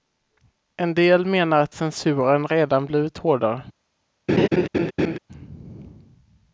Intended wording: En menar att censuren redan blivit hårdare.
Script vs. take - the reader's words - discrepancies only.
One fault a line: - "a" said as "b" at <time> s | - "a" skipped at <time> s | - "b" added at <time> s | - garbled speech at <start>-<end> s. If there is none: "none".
- "del" added at 0.9 s